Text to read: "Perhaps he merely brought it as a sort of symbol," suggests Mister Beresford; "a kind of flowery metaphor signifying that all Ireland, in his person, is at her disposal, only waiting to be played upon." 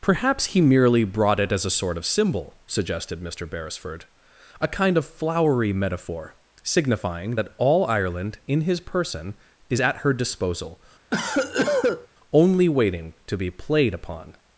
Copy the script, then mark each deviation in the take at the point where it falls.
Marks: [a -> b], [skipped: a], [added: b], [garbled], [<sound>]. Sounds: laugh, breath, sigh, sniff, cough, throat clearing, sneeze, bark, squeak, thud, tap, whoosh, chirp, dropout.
"Perhaps he merely brought it as a sort of symbol," [suggests -> suggested] Mister Beresford; "a kind of flowery metaphor signifying that all Ireland, in his person, is at her disposal, [cough] only waiting to be played upon."